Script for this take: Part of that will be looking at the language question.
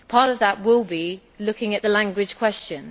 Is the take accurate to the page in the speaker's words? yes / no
yes